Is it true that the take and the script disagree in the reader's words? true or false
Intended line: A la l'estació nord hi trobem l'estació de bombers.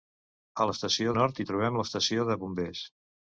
false